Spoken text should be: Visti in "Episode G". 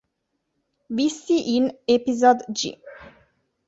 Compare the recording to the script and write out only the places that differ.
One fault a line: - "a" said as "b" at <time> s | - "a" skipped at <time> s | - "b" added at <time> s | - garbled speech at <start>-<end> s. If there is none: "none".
none